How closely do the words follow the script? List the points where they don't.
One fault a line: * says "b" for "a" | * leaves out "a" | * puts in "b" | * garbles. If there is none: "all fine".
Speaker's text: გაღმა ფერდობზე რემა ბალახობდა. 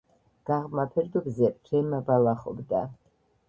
all fine